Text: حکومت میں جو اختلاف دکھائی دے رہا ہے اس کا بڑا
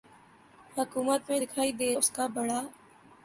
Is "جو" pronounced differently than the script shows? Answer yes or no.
yes